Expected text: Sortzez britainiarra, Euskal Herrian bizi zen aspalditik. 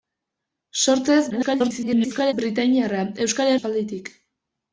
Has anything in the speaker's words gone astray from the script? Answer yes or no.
yes